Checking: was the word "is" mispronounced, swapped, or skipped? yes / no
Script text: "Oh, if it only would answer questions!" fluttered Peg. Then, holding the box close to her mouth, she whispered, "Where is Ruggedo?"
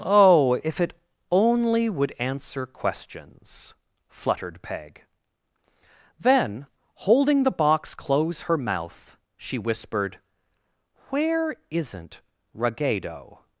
yes